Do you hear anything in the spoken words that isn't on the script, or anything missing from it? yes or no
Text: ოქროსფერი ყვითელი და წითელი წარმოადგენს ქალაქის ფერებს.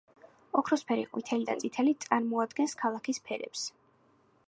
no